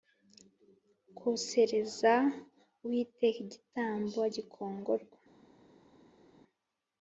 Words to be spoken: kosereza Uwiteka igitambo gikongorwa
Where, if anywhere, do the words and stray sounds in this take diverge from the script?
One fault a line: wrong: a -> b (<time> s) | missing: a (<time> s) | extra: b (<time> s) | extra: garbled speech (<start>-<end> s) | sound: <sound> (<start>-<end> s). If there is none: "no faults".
no faults